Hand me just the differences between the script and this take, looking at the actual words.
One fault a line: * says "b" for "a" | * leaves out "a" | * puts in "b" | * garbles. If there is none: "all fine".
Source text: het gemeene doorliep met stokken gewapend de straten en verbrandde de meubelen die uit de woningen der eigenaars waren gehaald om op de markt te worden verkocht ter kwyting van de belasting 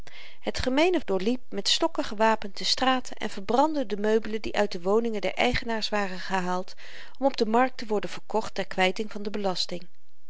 all fine